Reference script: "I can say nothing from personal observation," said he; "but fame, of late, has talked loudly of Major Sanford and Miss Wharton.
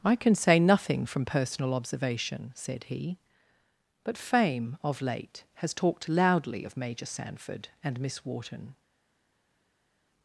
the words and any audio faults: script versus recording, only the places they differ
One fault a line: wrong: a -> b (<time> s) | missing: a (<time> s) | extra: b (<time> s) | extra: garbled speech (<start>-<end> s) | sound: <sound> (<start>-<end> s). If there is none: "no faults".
no faults